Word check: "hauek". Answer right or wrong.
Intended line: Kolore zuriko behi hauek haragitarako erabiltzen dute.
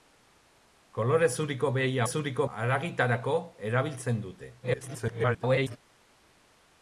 wrong